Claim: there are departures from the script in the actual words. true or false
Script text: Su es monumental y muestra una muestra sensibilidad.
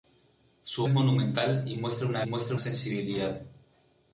false